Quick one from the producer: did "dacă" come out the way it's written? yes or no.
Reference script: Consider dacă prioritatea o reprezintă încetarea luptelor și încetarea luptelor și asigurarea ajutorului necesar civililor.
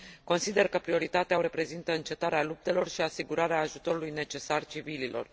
no